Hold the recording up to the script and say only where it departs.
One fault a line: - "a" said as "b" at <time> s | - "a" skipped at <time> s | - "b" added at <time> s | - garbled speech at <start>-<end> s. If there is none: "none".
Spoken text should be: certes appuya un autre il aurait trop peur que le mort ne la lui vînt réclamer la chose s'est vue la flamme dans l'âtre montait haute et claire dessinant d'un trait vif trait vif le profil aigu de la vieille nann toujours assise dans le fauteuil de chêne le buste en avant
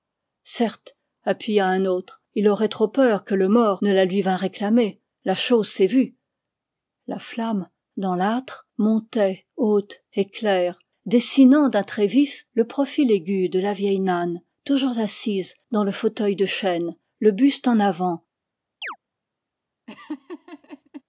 - "trait vif" skipped at 12.4 s